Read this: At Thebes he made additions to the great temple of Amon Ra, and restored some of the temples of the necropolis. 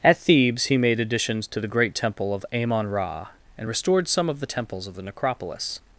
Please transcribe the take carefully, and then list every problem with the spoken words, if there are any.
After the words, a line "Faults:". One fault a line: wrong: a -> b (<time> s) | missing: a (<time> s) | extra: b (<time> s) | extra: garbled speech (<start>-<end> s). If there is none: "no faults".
At Thebes he made additions to the great temple of Amon Ra, and restored some of the temples of the necropolis.
Faults:
no faults